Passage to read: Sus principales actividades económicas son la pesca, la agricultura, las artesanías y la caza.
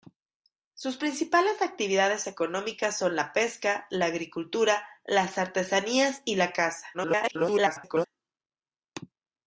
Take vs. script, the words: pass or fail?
fail